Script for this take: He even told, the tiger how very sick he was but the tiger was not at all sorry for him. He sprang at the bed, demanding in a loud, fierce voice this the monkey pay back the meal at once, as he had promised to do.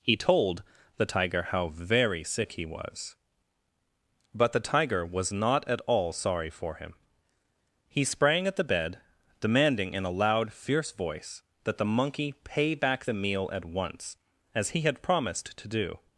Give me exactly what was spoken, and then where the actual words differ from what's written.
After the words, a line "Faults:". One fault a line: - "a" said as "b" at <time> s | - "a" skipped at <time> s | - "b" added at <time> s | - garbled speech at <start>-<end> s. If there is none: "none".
He told, the tiger how very sick he was but the tiger was not at all sorry for him. He sprang at the bed, demanding in a loud, fierce voice that the monkey pay back the meal at once, as he had promised to do.
Faults:
- "even" skipped at 0.2 s
- "this" said as "that" at 11.6 s